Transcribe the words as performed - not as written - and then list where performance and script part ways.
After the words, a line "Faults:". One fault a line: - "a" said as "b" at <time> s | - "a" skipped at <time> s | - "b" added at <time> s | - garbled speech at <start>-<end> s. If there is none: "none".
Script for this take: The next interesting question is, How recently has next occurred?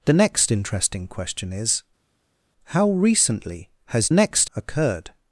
The next interesting question is, How recently has next occurred?
Faults:
none